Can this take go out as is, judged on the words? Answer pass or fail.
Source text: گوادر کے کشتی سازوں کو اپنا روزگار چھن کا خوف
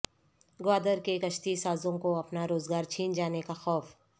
fail